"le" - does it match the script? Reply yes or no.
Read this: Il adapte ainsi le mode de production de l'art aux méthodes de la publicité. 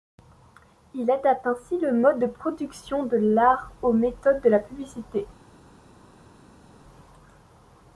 yes